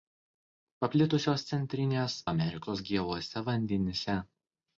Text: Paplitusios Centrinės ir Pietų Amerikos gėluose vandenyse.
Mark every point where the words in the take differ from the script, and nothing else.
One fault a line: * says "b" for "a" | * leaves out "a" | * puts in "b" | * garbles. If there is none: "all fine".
* leaves out "ir Pietų"